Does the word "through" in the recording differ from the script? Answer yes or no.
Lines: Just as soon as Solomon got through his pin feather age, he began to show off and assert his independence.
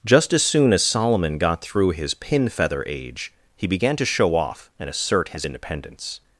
no